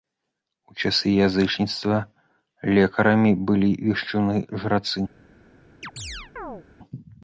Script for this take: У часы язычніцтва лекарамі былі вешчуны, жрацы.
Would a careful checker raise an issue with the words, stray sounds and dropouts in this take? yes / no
yes